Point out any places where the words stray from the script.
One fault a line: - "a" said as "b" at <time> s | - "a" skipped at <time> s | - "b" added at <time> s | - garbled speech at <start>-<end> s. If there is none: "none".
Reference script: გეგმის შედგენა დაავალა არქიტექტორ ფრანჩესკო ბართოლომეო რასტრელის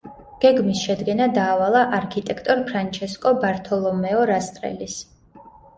none